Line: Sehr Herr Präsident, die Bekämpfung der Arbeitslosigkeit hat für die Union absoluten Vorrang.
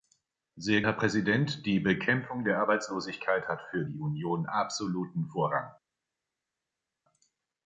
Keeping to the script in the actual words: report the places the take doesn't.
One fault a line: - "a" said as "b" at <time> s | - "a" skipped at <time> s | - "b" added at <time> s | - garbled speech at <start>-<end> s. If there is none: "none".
none